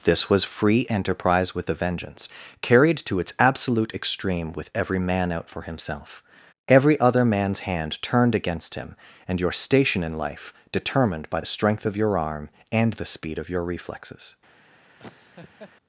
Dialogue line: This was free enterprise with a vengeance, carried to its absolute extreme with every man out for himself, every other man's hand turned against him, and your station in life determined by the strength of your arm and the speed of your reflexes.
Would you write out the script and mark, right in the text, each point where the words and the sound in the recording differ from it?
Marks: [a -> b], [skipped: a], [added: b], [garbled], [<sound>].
This was free enterprise with a vengeance, carried to its absolute extreme with every man out for himself, every other man's hand turned against him, and your station in life determined by the strength of your arm and the speed of your reflexes. [laugh]